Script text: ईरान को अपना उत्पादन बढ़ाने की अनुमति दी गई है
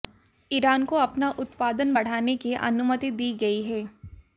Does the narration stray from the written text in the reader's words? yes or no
no